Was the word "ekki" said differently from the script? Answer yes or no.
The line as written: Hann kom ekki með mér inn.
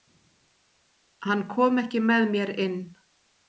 no